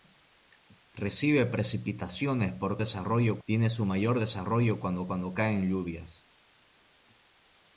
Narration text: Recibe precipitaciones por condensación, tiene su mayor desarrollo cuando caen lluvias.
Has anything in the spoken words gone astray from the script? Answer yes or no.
yes